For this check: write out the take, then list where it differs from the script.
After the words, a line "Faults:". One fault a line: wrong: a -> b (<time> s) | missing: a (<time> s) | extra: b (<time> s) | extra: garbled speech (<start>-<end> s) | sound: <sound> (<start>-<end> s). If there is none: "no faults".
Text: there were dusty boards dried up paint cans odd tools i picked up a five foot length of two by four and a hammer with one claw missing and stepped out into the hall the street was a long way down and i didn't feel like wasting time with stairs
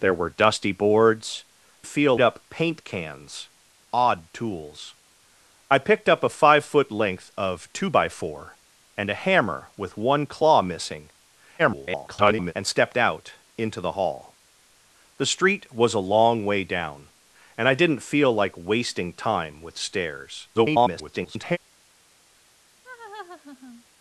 there were dusty boards feel up paint cans odd tools i picked up a five foot length of two by four and a hammer with one claw missing [garbled] and stepped out into the hall the street was a long way down and i didn't feel like wasting time with stairs [garbled]
Faults:
wrong: dried -> feel (1.9 s)
extra: garbled speech (11.6-12.5 s)
extra: garbled speech (20.5-21.6 s)
sound: laugh (22.8-23.8 s)